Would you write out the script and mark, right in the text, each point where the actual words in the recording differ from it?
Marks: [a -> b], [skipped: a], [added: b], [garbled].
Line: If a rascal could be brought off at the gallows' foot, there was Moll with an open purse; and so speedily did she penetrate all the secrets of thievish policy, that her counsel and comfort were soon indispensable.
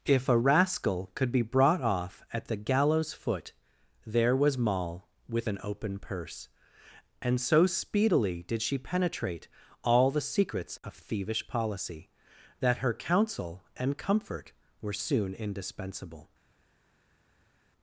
If a rascal could be brought off at the gallows' foot, there was Moll with an open purse; and so speedily did she penetrate all the secrets of thievish policy, that her counsel and comfort were soon indispensable.